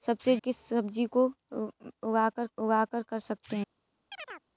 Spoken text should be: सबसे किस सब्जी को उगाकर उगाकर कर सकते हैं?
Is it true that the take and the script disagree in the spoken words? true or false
false